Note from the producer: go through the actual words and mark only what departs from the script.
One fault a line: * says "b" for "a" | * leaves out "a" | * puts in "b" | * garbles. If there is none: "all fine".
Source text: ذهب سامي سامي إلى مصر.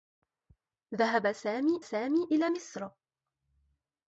all fine